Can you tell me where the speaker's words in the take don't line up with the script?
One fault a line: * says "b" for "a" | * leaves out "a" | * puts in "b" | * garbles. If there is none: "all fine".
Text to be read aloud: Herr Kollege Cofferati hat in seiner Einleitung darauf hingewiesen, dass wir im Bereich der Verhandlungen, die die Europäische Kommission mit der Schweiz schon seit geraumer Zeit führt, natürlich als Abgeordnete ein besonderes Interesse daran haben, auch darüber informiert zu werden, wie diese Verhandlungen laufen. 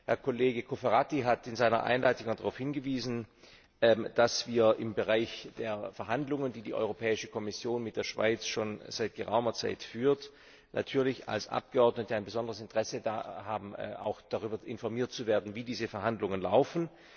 all fine